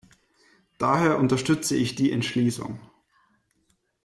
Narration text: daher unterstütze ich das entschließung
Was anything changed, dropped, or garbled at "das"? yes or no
yes